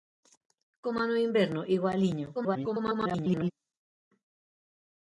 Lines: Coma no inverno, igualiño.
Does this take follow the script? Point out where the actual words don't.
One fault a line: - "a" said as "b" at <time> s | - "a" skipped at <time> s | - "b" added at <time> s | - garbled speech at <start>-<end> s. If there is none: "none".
- garbled speech at 2.3-3.5 s